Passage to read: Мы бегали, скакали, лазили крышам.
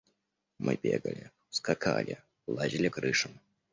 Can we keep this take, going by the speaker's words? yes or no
yes